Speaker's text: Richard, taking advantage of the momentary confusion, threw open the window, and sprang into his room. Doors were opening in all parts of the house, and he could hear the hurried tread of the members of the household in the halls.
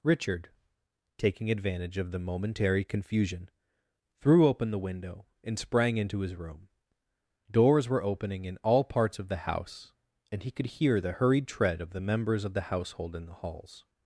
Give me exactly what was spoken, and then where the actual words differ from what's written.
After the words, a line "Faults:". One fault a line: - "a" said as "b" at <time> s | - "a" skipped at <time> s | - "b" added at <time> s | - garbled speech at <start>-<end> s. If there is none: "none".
Richard, taking advantage of the momentary confusion, threw open the window, and sprang into his room. Doors were opening in all parts of the house, and he could hear the hurried tread of the members of the household in the halls.
Faults:
none